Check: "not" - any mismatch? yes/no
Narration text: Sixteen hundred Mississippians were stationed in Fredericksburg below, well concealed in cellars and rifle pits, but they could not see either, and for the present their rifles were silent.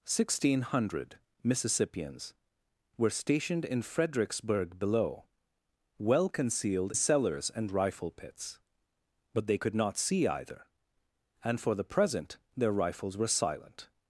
no